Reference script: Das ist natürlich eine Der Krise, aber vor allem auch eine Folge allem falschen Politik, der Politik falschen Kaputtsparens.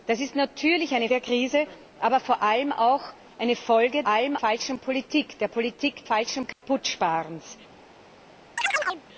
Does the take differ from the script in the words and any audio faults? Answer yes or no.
yes